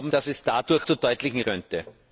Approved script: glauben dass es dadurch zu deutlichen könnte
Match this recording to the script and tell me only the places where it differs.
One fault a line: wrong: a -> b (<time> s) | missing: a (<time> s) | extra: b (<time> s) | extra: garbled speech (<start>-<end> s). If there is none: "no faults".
no faults